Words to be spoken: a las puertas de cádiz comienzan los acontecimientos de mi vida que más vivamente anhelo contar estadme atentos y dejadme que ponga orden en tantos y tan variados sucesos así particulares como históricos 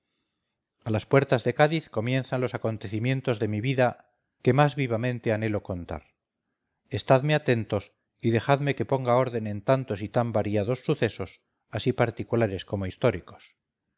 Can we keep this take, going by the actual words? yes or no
yes